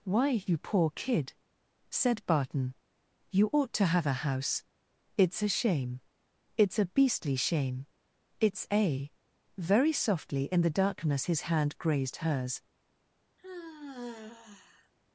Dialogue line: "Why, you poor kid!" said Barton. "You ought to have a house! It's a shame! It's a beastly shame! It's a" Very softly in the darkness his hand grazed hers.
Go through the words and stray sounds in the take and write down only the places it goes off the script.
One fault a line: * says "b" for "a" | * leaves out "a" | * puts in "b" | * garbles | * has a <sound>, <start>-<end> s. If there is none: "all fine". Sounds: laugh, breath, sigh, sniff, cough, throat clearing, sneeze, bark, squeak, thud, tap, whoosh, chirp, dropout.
* has a sigh, 13.4-14.9 s